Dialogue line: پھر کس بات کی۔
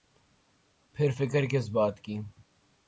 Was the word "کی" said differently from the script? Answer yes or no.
no